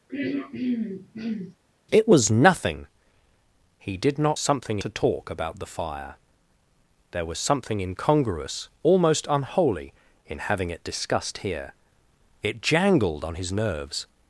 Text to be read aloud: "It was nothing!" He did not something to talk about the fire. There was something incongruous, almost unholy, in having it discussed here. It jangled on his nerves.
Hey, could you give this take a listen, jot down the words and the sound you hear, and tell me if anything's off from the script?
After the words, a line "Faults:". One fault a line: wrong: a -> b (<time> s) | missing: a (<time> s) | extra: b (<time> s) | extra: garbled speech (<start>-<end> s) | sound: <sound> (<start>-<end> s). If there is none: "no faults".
"It was nothing!" He did not something to talk about the fire. There was something incongruous, almost unholy, in having it discussed here. It jangled on his nerves.
Faults:
sound: throat clearing (0.1-1.6 s)